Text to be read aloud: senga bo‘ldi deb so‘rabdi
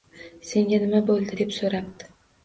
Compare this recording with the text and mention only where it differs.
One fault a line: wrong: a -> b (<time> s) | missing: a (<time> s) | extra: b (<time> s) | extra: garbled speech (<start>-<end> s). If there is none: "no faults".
extra: nima (0.8 s)